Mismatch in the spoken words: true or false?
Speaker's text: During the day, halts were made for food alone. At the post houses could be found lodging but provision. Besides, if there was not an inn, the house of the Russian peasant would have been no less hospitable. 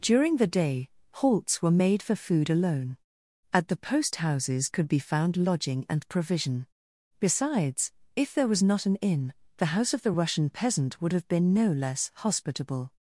true